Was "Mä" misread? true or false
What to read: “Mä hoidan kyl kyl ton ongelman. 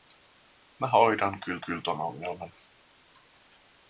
false